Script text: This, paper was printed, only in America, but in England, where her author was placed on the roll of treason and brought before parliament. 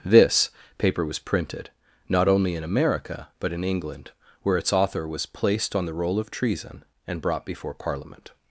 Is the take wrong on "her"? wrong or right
wrong